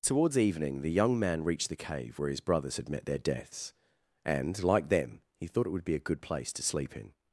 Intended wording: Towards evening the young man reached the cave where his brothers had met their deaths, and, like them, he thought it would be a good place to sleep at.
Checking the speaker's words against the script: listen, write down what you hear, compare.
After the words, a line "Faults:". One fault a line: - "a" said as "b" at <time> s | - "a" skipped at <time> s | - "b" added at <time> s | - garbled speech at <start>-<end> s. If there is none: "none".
Towards evening the young man reached the cave where his brothers had met their deaths, and, like them, he thought it would be a good place to sleep in.
Faults:
- "at" said as "in" at 6.9 s